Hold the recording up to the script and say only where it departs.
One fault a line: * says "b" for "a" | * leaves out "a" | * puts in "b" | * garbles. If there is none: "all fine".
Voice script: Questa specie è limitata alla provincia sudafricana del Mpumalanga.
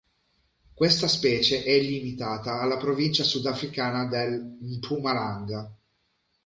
all fine